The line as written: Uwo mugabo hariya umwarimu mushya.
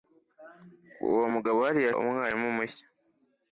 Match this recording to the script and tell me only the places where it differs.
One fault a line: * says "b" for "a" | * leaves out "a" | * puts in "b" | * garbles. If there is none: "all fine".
all fine